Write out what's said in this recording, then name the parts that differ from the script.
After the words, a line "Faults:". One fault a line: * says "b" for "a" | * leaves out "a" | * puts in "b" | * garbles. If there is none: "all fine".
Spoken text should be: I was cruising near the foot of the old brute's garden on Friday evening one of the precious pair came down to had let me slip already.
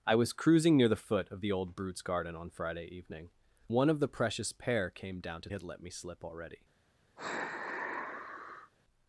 I was cruising near the foot of the old brute's garden on Friday evening one of the precious pair came down to had let me slip already.
Faults:
all fine